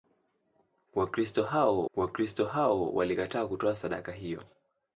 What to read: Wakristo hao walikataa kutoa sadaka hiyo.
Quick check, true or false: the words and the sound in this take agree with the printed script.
false